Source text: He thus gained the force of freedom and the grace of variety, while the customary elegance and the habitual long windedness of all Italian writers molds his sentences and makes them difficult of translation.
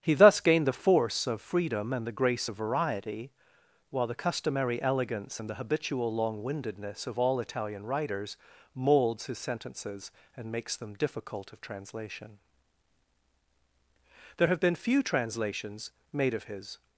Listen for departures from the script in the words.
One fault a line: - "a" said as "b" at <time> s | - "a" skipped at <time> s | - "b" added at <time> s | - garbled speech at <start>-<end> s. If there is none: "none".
- "There have been few translations made of his" added at 14.4 s